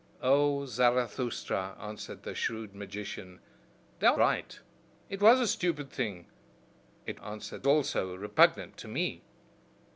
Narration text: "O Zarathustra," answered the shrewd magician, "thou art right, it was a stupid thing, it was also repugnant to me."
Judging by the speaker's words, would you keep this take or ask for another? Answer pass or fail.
fail